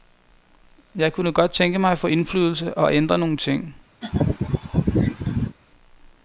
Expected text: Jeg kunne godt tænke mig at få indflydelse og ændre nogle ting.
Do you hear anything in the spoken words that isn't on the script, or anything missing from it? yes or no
no